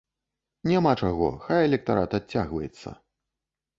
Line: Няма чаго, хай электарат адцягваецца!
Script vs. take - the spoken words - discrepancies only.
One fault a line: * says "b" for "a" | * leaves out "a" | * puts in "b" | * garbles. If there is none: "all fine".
all fine